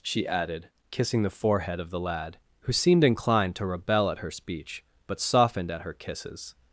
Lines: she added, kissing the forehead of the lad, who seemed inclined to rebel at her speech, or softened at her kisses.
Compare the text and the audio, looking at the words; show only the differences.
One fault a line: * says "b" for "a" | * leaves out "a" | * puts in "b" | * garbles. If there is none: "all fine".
* says "but" for "or"